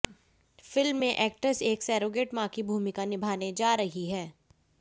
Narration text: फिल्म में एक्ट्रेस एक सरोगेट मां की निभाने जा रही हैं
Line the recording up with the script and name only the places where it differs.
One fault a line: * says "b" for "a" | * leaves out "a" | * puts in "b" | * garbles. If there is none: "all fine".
* puts in "भूमिका"